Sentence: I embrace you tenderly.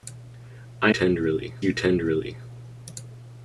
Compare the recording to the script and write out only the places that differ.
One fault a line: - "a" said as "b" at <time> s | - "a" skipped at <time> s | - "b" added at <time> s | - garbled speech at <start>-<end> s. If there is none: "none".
- "embrace" said as "tenderly" at 0.9 s